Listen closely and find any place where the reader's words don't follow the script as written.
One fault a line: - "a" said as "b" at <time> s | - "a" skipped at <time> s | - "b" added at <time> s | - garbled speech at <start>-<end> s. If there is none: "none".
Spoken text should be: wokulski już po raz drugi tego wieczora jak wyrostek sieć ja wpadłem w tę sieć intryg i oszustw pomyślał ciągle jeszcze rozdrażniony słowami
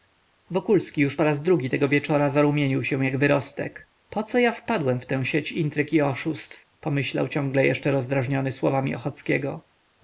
- "zarumienił się" added at 2.3 s
- "sieć" said as "poco" at 4.1 s